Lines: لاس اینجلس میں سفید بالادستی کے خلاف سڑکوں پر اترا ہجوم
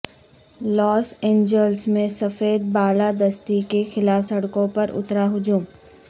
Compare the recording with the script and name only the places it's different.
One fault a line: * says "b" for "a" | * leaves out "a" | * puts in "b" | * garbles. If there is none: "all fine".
all fine